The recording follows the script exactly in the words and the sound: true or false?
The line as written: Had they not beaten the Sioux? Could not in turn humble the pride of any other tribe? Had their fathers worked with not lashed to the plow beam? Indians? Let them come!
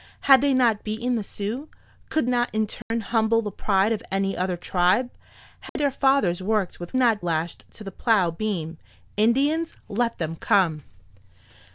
false